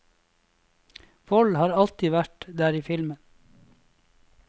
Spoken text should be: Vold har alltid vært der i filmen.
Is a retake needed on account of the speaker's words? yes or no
no